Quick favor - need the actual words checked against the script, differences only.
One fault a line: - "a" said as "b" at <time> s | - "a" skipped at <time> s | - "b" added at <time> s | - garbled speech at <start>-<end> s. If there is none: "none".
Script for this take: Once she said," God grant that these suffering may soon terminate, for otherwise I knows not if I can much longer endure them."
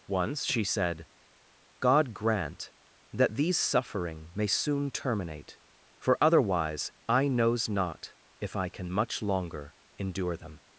none